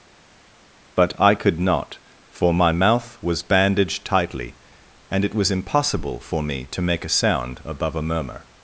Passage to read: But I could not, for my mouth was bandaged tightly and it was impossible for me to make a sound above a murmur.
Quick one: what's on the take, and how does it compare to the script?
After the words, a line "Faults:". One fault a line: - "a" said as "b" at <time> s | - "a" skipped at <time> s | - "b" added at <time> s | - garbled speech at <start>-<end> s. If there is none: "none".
But I could not, for my mouth was bandaged tightly and it was impossible for me to make a sound above a murmur.
Faults:
none